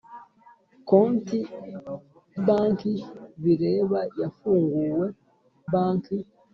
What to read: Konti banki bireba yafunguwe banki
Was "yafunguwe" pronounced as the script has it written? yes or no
yes